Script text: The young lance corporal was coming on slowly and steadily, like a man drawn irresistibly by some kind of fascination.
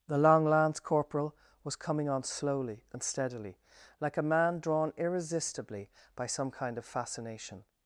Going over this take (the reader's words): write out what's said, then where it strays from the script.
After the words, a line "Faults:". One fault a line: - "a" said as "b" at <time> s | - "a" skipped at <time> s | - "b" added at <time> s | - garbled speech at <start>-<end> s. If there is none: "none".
The long lance corporal was coming on slowly and steadily, like a man drawn irresistibly by some kind of fascination.
Faults:
- "young" said as "long" at 0.2 s